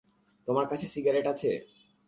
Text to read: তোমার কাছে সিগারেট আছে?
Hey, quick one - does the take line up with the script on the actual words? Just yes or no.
yes